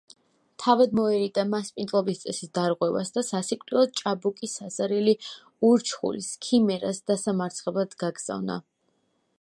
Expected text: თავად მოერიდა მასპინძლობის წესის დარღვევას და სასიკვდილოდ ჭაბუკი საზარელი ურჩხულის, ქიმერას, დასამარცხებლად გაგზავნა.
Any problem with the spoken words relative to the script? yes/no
no